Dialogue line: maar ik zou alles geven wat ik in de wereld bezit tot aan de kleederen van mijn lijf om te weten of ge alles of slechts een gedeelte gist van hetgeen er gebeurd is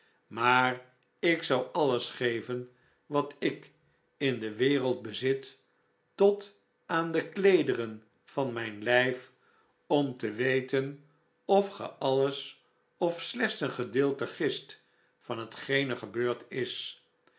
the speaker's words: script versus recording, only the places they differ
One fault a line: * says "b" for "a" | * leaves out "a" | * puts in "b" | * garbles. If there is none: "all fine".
all fine